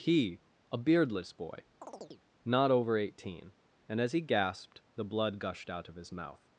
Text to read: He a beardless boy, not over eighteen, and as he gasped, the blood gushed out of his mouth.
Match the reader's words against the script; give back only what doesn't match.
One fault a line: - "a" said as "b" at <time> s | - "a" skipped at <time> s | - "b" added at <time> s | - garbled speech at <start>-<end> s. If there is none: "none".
none